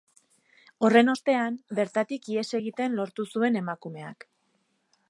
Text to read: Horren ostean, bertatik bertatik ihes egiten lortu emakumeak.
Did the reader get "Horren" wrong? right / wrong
right